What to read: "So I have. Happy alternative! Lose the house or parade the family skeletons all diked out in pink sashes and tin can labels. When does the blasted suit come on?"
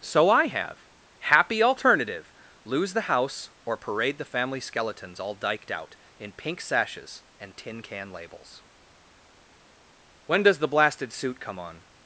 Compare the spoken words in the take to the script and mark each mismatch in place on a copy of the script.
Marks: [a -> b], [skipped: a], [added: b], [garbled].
"So I have. Happy alternative! Lose the house or parade the family skeletons all diked out in pink sashes and tin can labels. When does the blasted suit come on?"